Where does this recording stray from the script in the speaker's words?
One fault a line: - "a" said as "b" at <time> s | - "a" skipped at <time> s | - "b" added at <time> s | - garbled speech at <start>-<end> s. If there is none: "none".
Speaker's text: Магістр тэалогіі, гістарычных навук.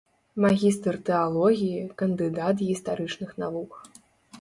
- "кандыдат" added at 2.0 s